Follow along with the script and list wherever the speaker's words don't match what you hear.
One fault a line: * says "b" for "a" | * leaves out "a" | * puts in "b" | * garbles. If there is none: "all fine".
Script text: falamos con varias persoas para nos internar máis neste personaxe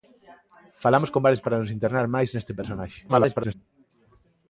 * leaves out "persoas"
* garbles